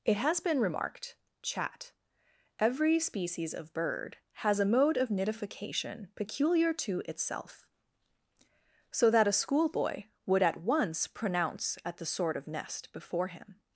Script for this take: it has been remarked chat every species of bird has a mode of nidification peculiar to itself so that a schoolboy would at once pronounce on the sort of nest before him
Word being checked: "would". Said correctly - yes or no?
yes